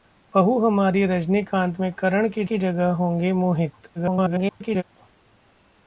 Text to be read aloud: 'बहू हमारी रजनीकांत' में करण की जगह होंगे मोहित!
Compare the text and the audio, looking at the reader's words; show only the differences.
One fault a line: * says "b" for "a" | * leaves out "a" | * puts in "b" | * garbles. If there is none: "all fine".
* puts in "की"
* garbles